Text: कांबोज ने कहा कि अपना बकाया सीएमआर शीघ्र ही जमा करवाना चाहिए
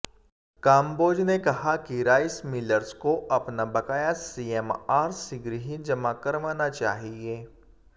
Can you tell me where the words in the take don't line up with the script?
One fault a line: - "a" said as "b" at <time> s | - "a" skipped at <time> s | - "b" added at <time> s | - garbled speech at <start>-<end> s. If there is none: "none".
- "राइस मिलर्स को" added at 2.0 s